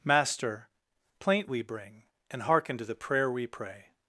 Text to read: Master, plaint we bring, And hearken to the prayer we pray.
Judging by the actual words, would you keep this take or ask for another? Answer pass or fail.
pass